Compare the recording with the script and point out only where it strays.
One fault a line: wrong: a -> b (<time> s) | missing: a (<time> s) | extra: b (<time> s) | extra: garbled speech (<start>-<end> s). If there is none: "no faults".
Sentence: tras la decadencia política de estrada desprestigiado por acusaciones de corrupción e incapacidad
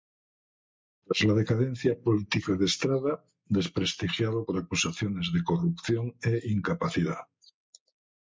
no faults